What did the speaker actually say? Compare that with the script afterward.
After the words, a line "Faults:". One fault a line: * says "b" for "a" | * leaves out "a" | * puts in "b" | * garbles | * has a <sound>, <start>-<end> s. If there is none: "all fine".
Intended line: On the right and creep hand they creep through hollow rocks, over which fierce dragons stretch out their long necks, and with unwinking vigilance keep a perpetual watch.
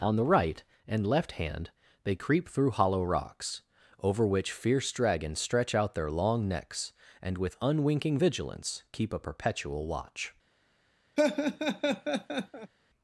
On the right and left hand they creep through hollow rocks, over which fierce dragons stretch out their long necks, and with unwinking vigilance keep a perpetual watch.
Faults:
* says "left" for "creep"
* has a laugh, 11.2-12.7 s